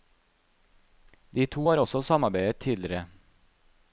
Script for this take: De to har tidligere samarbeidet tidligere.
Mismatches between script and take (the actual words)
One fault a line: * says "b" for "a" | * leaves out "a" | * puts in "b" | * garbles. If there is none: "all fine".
* says "også" for "tidligere"